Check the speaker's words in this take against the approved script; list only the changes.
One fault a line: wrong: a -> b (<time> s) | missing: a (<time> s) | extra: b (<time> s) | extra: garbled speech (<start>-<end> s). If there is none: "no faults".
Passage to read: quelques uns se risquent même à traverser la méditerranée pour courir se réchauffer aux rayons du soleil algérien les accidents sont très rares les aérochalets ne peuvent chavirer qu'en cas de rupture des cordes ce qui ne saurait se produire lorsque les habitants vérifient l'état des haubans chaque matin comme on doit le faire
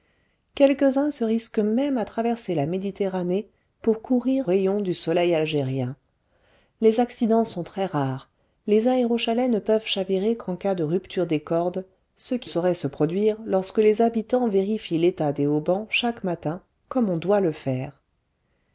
missing: se réchauffer aux (4.5 s)
missing: ne (12.5 s)